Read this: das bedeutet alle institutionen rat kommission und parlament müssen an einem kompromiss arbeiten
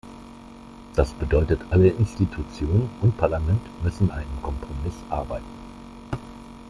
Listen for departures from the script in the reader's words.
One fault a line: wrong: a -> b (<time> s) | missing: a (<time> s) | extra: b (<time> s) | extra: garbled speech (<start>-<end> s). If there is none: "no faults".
missing: rat kommission (2.9 s)
missing: an (4.1 s)